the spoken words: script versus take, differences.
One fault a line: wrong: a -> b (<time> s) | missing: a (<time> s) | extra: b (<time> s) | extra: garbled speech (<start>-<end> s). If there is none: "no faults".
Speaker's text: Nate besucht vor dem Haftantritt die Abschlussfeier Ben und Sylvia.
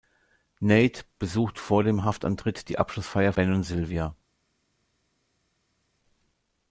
no faults